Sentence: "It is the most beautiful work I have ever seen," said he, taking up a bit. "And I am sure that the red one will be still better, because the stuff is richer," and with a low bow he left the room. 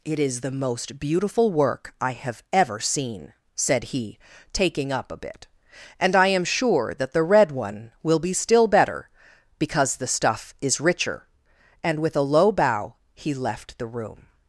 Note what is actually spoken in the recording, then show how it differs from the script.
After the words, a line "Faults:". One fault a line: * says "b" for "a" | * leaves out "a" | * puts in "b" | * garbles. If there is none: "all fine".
"It is the most beautiful work I have ever seen," said he, taking up a bit. "And I am sure that the red one will be still better, because the stuff is richer," and with a low bow he left the room.
Faults:
all fine